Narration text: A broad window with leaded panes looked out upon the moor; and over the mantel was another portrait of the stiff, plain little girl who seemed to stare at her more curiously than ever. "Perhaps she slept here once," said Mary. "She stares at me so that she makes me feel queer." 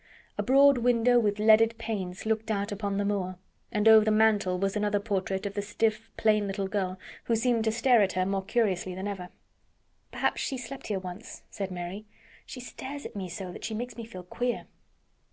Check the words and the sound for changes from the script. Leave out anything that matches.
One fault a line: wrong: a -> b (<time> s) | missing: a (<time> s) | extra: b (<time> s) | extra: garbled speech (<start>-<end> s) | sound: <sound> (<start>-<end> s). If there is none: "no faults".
no faults